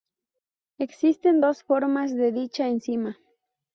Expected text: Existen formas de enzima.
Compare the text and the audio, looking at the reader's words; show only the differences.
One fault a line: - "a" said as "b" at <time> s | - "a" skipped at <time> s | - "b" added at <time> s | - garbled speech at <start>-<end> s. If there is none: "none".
- "dos" added at 1.4 s
- "dicha" added at 2.3 s